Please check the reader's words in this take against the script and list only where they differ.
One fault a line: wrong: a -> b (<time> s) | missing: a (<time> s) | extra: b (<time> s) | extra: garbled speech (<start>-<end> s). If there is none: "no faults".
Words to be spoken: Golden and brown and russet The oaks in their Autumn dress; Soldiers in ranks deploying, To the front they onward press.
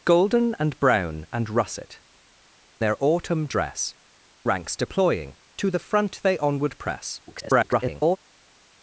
missing: The oaks in (2.0 s)
missing: Soldiers in (4.0 s)
extra: garbled speech (7.3-8.2 s)